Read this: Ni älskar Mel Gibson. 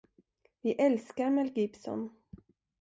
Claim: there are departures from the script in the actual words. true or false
true